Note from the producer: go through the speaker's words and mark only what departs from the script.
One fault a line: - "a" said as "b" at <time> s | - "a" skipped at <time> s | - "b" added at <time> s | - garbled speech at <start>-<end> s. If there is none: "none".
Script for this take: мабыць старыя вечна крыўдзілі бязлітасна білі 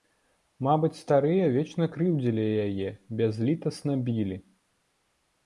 - "яе" added at 2.7 s